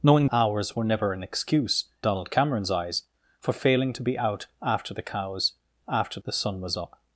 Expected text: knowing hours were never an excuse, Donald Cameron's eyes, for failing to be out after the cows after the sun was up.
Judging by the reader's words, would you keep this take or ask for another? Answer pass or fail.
pass